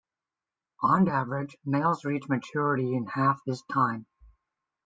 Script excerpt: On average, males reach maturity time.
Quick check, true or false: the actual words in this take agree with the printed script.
false